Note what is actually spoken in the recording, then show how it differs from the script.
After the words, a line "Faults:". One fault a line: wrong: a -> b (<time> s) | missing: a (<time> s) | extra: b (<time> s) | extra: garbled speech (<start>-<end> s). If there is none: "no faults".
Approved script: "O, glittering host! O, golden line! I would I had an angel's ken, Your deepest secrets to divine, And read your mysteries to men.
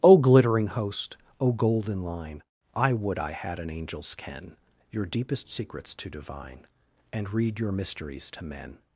"O, glittering host! O, golden line! I would I had an angel's ken, Your deepest secrets to divine, And read your mysteries to men.
Faults:
no faults